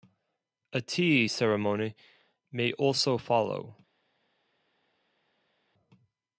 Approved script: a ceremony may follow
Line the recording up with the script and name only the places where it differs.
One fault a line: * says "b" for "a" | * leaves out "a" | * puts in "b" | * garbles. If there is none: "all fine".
* puts in "tea"
* puts in "also"